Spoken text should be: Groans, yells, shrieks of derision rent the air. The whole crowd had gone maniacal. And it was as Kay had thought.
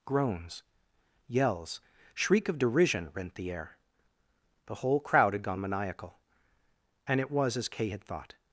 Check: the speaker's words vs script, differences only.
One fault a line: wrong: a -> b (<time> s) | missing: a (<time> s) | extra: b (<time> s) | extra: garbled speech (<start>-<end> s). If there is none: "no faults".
wrong: shrieks -> shriek (2.1 s)